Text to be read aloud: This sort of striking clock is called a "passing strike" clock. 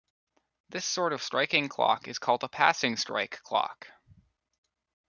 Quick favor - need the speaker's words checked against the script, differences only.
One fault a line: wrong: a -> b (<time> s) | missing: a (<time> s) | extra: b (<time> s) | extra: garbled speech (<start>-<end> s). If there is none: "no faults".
no faults